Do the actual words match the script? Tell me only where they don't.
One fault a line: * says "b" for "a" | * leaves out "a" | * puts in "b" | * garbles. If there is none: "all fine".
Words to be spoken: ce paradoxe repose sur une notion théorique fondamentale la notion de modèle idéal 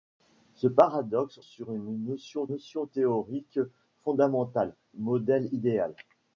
* leaves out "repose"
* puts in "notion"
* leaves out "la notion de"